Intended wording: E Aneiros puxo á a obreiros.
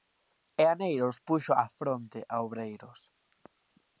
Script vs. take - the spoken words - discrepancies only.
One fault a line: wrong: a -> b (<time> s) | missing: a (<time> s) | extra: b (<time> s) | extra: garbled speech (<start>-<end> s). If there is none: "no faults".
extra: fronte (1.8 s)